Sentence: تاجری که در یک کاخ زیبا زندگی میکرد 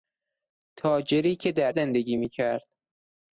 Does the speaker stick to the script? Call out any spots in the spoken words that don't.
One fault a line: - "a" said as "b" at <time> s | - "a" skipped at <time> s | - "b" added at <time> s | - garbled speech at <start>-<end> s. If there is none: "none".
- "یک کاخ زیبا" skipped at 1.8 s